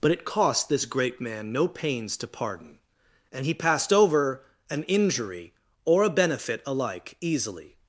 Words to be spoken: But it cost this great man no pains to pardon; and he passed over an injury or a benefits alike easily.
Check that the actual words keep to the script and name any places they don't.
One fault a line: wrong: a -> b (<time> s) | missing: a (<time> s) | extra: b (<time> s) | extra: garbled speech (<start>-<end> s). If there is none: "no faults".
wrong: benefits -> benefit (6.1 s)